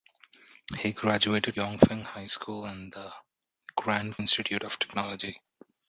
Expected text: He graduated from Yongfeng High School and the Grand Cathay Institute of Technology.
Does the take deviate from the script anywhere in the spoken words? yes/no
yes